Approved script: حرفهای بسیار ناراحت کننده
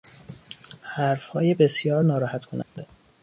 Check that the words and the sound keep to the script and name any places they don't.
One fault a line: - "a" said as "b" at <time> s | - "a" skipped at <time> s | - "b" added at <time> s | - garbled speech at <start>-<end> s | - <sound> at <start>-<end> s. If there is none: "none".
- dropout at 2.6-2.8 s